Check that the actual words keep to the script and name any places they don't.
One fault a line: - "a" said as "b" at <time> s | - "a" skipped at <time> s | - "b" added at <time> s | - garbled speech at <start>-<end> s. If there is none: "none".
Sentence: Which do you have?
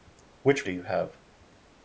none